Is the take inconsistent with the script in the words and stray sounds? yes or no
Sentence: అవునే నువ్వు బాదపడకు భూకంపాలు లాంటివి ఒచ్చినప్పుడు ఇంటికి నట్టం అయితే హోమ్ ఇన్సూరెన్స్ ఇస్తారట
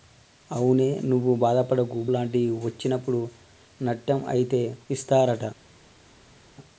yes